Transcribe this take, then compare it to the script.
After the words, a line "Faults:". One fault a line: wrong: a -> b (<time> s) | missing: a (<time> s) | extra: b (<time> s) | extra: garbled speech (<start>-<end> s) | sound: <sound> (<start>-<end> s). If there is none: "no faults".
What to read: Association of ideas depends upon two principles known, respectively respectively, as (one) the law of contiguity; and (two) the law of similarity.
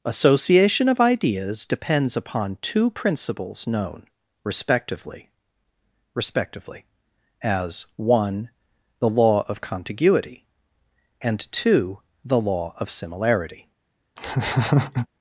Association of ideas depends upon two principles known, respectively respectively, as (one) the law of contiguity; and (two) the law of similarity.
Faults:
sound: laugh (14.2-15.1 s)